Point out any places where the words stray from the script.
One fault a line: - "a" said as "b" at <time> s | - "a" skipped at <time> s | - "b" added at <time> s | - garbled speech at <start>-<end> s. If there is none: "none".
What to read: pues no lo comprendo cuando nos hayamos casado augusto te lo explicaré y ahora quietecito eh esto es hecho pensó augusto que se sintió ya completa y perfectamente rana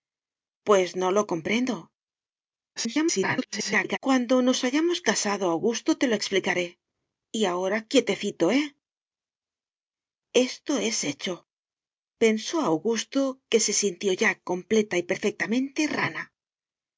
- garbled speech at 2.8-4.0 s